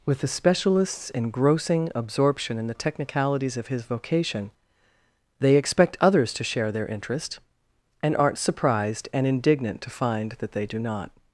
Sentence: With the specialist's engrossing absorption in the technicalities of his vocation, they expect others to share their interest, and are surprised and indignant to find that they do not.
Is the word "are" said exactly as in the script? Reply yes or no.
no